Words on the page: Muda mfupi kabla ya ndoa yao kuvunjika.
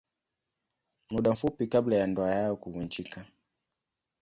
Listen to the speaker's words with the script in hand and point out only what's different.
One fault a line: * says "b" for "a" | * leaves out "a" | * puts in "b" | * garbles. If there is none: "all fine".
all fine